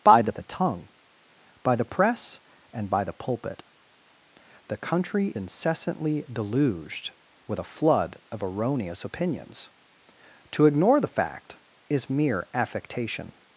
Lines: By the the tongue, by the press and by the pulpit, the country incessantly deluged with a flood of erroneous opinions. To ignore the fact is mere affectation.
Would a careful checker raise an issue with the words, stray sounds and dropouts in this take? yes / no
no